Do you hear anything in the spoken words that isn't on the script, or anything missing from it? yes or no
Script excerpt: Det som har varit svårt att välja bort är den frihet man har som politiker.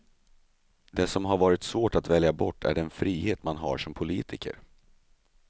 no